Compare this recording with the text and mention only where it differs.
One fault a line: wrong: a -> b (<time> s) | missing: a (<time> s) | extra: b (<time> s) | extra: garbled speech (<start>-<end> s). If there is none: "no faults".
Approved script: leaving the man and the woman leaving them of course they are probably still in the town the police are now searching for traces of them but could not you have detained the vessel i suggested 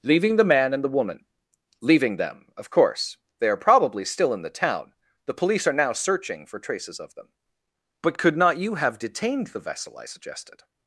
no faults